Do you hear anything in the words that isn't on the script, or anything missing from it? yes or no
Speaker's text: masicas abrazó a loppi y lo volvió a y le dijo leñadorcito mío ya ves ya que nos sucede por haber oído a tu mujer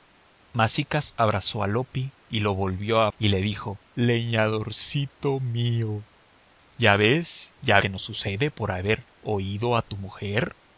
no